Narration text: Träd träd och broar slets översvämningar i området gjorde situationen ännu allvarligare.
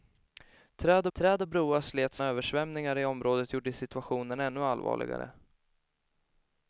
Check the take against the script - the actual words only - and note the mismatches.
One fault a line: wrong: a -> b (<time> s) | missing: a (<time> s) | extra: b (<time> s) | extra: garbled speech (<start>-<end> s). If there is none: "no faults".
no faults